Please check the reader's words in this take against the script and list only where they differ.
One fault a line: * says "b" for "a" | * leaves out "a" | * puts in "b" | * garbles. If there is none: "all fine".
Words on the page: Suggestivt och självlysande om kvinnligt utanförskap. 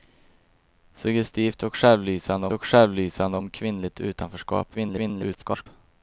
* puts in "och självlysande"
* garbles